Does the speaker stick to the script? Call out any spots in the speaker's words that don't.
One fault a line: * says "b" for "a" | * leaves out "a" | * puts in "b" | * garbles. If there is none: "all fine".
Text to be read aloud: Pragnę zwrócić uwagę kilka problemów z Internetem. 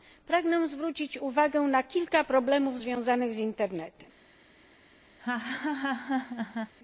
* puts in "na"
* puts in "związanych"